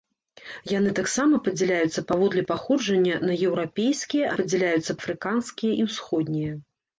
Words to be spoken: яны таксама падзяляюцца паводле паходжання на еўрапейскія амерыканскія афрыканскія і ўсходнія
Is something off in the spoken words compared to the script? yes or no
yes